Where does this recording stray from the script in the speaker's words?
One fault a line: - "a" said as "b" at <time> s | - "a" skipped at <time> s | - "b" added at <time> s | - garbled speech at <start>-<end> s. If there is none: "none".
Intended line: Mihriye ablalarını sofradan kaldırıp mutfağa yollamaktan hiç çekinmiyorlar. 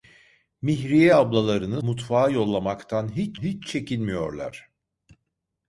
- "sofradan kaldırıp" skipped at 1.8 s
- "hiç" added at 3.4 s